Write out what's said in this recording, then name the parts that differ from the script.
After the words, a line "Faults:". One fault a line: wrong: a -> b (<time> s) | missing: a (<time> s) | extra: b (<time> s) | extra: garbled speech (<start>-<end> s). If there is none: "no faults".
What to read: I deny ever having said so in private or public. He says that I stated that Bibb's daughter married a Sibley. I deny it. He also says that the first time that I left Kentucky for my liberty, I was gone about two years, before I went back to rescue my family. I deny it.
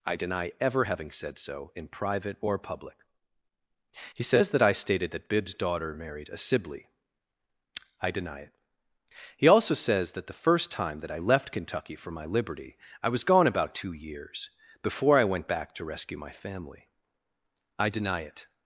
I deny ever having said so in private or public. He says that I stated that Bibb's daughter married a Sibley. I deny it. He also says that the first time that I left Kentucky for my liberty, I was gone about two years, before I went back to rescue my family. I deny it.
Faults:
no faults